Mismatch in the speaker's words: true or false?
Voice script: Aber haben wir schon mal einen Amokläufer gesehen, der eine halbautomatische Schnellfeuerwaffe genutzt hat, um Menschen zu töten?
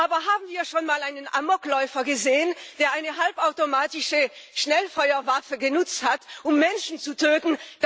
false